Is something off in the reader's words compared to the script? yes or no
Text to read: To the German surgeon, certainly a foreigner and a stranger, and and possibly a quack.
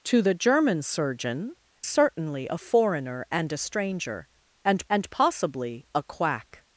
no